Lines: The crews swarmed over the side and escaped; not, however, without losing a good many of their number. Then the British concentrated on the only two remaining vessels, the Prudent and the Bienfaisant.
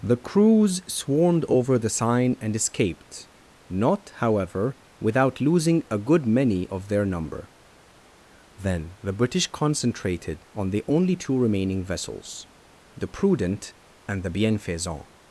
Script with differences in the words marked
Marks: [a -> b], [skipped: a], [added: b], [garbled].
The crews swarmed over the [side -> sign] and escaped; not, however, without losing a good many of their number. Then the British concentrated on the only two remaining vessels, the Prudent and the Bienfaisant.